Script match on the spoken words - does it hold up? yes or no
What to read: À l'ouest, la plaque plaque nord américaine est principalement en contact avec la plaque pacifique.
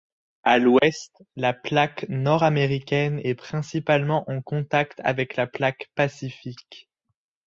no